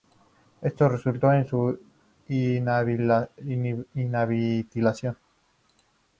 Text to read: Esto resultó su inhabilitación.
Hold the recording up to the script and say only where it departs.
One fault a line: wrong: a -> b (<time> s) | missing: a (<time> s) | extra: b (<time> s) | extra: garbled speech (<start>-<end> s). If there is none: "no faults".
extra: en (1.3 s)